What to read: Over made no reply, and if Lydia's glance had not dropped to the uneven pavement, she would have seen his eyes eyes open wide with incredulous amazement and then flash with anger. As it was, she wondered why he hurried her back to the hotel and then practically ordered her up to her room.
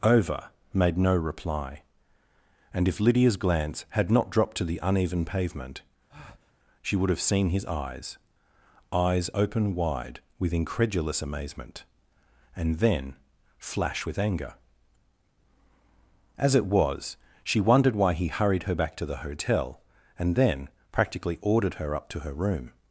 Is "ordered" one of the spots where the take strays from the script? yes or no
no